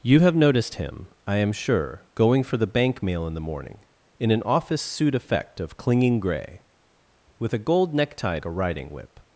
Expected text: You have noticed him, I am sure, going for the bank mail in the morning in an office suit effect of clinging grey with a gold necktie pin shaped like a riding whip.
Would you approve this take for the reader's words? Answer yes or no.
no